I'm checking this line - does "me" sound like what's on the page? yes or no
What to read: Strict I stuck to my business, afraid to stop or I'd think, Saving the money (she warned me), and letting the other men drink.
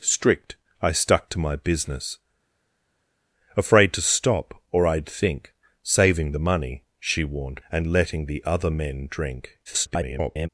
no